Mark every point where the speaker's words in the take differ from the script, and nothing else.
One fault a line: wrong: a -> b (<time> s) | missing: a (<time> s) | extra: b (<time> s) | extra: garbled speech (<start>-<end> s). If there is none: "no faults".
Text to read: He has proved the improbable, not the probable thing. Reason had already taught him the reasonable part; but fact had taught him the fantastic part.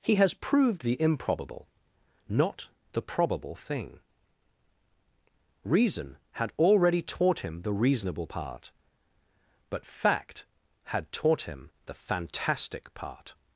no faults